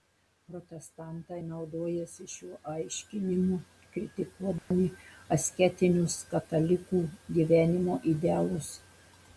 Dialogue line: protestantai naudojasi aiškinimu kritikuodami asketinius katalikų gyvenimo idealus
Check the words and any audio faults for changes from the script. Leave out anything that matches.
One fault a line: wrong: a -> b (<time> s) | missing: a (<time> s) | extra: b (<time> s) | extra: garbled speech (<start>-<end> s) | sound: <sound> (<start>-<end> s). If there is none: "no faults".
extra: šiuo (2.3 s)
sound: dropout (4.6-4.7 s)